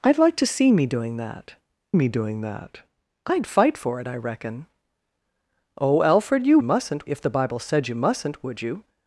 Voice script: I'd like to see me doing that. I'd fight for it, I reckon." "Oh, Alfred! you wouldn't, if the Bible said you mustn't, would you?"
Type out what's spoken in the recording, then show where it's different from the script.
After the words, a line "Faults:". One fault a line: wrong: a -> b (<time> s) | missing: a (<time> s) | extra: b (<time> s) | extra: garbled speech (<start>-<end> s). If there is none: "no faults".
I'd like to see me doing that me doing that. I'd fight for it, I reckon." "Oh, Alfred! you mustn't, if the Bible said you mustn't, would you?"
Faults:
extra: me doing that (1.9 s)
wrong: wouldn't -> mustn't (6.6 s)